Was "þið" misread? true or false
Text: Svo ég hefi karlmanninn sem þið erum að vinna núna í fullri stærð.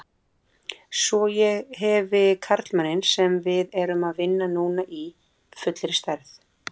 true